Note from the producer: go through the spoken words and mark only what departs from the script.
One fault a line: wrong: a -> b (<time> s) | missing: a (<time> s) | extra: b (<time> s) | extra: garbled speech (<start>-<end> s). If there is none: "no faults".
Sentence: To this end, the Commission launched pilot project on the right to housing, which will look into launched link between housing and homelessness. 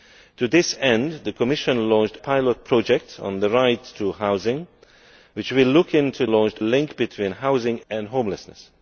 no faults